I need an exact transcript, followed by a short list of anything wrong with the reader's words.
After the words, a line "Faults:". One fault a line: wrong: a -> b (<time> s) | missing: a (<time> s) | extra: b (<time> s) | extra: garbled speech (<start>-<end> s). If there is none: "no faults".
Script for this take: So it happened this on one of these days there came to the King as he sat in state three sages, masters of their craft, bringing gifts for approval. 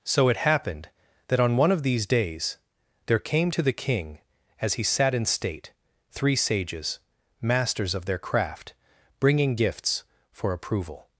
So it happened that on one of these days there came to the King as he sat in state three sages, masters of their craft, bringing gifts for approval.
Faults:
wrong: this -> that (1.3 s)